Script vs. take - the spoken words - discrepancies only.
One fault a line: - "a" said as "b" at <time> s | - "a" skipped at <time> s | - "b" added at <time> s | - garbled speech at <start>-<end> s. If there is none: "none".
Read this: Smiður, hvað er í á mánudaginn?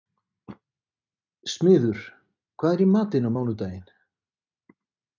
- "matinn" added at 3.0 s